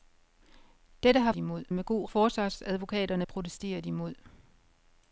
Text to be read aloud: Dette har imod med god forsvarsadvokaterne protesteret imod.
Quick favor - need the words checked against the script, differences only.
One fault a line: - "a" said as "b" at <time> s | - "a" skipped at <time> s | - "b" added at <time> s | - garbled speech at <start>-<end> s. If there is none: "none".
none